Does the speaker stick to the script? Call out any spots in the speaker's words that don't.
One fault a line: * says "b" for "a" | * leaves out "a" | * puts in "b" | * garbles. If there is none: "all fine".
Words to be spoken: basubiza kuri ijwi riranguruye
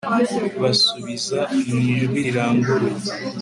* says "mu" for "kuri"